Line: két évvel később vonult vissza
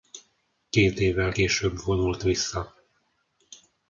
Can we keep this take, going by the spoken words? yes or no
yes